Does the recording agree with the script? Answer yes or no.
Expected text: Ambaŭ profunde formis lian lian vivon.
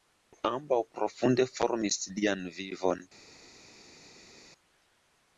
no